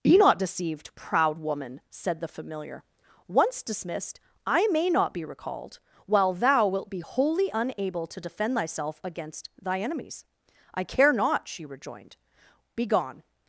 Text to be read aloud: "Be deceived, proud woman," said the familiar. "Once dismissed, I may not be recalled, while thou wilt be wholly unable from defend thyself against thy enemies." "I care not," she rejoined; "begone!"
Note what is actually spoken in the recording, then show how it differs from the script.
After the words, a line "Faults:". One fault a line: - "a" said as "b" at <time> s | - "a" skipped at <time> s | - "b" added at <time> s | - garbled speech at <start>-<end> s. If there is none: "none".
"Be not deceived, proud woman," said the familiar. "Once dismissed, I may not be recalled, while thou wilt be wholly unable to defend thyself against thy enemies." "I care not," she rejoined; "begone!"
Faults:
- "not" added at 0.2 s
- "from" said as "to" at 8.1 s